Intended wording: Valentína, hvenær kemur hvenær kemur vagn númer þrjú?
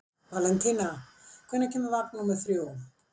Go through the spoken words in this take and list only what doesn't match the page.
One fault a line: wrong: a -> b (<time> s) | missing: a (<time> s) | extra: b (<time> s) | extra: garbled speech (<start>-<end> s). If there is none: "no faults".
missing: hvenær kemur (1.9 s)